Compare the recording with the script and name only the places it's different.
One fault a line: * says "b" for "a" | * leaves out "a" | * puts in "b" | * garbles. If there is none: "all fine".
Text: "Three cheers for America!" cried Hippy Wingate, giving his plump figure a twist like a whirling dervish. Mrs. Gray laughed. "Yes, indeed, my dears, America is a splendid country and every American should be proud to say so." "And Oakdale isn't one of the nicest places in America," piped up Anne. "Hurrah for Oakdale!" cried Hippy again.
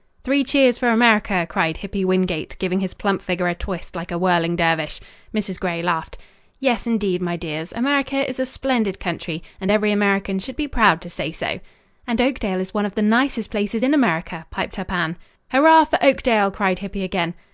* says "is" for "isn't"